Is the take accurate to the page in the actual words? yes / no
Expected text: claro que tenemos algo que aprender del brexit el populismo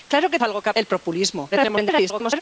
no